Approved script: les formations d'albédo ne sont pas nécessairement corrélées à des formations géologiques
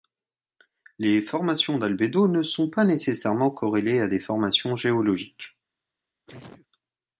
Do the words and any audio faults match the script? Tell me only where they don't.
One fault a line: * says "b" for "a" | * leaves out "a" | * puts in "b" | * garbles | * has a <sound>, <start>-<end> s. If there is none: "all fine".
* has a sneeze, 6.3-6.7 s